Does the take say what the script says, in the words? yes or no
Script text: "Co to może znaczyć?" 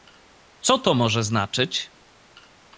yes